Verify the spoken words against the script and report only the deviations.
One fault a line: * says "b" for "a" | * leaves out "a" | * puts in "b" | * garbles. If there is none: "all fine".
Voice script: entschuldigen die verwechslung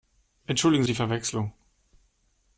all fine